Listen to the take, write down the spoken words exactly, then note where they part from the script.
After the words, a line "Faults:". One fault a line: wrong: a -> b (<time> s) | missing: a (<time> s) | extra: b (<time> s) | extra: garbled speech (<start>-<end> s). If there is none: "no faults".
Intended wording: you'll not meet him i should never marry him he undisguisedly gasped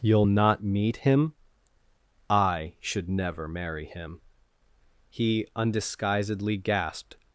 you'll not meet him i should never marry him he undisguisedly gasped
Faults:
no faults